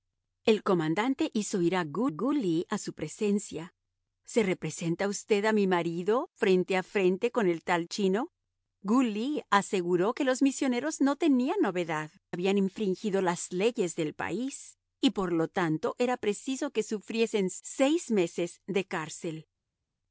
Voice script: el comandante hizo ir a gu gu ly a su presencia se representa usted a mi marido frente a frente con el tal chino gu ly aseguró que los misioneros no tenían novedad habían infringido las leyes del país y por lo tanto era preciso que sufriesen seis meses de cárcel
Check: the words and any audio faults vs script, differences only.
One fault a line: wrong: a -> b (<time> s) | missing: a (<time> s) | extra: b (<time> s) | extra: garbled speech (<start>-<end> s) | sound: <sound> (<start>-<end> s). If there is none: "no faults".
no faults